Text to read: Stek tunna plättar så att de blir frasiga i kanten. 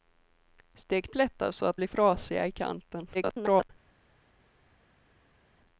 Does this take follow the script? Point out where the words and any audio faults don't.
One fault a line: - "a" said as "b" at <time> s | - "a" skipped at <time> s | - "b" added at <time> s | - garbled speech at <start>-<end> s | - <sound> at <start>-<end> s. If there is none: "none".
- "tunna" skipped at 1.1 s
- "de" skipped at 1.8 s
- garbled speech at 3.1-3.7 s